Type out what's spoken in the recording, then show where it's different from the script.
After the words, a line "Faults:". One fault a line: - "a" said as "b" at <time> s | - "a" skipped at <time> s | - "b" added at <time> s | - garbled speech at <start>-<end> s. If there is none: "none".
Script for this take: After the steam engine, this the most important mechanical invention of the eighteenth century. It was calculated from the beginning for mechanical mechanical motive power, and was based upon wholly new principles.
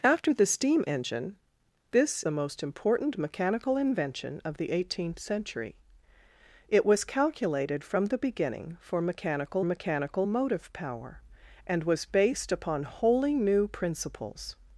After the steam engine, this the most important mechanical invention of the eighteenth century. It was calculated from the beginning for mechanical mechanical motive power, and was based upon wholly new principles.
Faults:
none